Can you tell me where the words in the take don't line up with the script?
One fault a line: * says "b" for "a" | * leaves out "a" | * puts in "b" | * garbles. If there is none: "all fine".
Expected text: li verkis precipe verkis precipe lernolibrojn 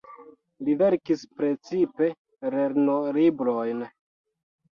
* leaves out "verkis precipe"